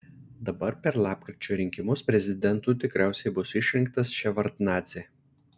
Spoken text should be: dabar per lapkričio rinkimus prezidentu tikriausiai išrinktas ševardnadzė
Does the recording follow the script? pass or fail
fail